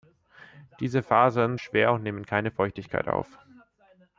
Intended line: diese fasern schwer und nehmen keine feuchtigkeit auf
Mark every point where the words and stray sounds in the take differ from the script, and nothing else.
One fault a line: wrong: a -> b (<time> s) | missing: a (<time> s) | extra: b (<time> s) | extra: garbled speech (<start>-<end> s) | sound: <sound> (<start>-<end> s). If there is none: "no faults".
no faults